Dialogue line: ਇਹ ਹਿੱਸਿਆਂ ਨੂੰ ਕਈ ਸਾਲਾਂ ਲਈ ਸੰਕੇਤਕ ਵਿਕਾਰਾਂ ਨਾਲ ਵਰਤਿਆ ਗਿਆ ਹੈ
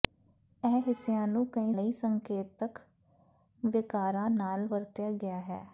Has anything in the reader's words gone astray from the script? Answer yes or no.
yes